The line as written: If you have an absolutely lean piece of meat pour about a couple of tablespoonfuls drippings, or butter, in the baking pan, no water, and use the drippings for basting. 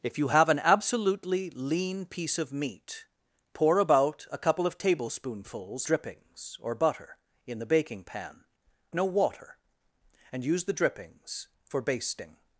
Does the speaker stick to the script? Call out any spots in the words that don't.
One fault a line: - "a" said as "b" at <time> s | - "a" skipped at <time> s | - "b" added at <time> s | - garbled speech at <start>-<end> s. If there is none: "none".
none